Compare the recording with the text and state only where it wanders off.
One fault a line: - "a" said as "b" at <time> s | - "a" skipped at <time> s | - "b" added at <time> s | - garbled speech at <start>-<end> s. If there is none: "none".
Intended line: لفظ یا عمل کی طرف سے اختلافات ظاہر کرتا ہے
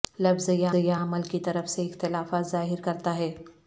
- "یا" added at 0.7 s